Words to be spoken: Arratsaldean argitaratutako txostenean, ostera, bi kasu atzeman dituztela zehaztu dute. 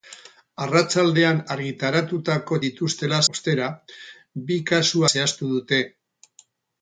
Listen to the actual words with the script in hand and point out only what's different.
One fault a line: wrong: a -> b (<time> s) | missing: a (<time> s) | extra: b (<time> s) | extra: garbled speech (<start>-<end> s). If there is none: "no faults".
wrong: txostenean -> dituztela (2.7 s)
missing: atzeman dituztela (5.0 s)